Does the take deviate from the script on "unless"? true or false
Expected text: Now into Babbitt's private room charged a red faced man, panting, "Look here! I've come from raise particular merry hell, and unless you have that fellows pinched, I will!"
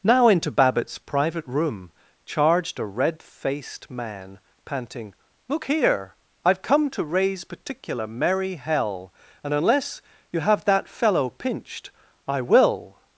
false